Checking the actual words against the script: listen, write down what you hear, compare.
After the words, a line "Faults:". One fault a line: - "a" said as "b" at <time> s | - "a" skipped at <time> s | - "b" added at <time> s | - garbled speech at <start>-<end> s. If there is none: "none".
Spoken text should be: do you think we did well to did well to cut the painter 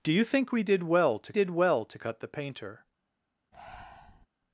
do you think we did well to did well to cut the painter
Faults:
none